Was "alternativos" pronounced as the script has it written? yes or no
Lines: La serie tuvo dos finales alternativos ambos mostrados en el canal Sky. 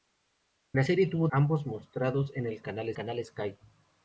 no